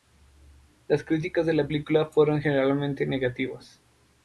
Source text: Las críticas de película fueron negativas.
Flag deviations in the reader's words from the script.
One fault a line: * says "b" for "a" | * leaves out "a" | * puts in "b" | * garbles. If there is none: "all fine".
* puts in "la"
* puts in "generalmente"